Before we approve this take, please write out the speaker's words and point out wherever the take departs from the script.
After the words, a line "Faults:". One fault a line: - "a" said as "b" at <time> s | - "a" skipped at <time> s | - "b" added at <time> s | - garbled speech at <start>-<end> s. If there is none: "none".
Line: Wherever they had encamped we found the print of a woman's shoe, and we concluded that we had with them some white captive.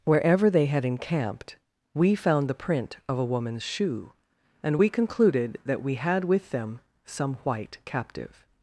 Wherever they had encamped we found the print of a woman's shoe, and we concluded that we had with them some white captive.
Faults:
none